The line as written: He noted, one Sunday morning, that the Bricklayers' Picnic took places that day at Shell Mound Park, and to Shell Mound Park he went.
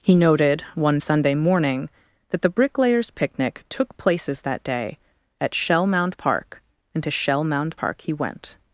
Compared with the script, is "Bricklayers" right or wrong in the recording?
right